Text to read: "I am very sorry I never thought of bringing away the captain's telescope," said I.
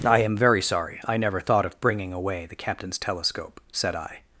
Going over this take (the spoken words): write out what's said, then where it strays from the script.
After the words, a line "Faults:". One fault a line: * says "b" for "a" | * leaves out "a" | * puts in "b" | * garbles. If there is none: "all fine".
"I am very sorry I never thought of bringing away the captain's telescope," said I.
Faults:
all fine